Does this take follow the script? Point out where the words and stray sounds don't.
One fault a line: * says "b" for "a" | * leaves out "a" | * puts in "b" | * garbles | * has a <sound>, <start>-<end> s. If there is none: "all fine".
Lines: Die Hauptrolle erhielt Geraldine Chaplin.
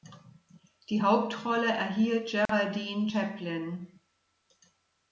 * has a dropout, 2.5-2.5 s